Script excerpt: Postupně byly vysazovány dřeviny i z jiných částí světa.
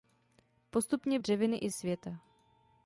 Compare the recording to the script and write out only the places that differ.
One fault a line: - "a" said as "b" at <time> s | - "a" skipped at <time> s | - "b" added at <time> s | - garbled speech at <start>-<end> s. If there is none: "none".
- "byly vysazovány" skipped at 1.2 s
- "z jiných částí" skipped at 1.7 s